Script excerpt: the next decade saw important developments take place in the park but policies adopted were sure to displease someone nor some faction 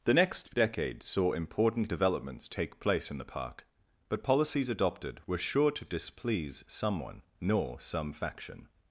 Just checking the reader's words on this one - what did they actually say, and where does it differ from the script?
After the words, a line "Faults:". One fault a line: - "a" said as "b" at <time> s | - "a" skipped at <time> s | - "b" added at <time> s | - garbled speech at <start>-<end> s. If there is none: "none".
the next decade saw important developments take place in the park but policies adopted were sure to displease someone nor some faction
Faults:
none